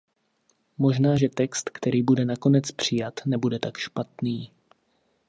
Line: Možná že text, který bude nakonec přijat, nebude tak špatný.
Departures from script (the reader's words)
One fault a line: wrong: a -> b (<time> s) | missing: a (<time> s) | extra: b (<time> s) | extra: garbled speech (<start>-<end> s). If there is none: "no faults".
no faults